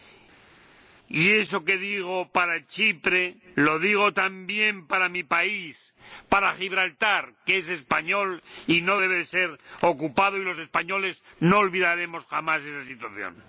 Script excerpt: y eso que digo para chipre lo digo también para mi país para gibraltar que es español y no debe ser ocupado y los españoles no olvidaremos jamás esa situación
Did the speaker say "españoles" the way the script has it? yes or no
yes